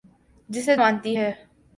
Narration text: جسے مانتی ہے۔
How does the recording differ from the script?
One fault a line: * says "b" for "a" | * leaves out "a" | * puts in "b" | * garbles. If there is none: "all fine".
all fine